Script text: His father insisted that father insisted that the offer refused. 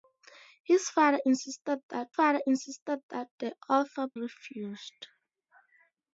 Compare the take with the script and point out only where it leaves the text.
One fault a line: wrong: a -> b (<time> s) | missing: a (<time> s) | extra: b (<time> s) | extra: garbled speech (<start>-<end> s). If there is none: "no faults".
no faults